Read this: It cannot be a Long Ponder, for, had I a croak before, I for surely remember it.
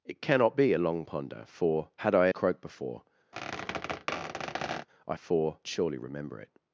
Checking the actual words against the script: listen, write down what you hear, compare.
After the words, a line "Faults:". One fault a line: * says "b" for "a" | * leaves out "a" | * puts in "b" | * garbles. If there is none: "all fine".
It cannot be a Long Ponder, for, had I a croak before, I for surely remember it.
Faults:
all fine